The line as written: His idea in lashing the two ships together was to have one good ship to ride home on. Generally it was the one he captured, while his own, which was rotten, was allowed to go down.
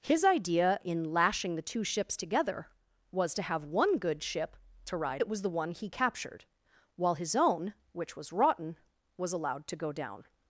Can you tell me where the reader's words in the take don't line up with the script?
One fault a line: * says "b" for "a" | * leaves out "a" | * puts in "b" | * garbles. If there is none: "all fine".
* leaves out "home on Generally"